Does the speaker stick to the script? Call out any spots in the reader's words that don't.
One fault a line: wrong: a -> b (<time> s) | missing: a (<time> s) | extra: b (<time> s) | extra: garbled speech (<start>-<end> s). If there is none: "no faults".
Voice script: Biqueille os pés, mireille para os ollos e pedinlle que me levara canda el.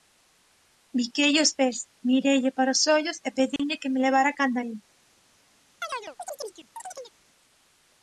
no faults